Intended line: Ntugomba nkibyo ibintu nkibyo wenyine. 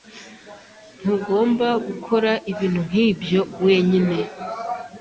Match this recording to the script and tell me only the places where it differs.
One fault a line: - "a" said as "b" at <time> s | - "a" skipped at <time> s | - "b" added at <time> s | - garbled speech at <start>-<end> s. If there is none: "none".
- "nkibyo" said as "gukora" at 1.8 s